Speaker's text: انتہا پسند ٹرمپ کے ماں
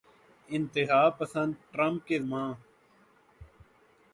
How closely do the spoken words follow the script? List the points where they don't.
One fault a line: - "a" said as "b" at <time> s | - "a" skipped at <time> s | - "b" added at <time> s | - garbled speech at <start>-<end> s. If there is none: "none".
none